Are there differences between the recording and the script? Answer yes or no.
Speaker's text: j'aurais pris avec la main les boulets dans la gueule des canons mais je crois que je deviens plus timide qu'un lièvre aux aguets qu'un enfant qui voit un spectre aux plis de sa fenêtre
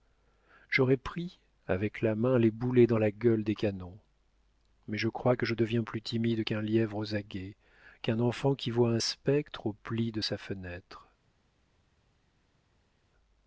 no